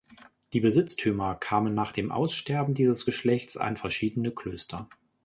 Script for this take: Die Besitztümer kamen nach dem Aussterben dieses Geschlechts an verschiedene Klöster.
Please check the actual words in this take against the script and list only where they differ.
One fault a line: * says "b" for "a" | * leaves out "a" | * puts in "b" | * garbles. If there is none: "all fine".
all fine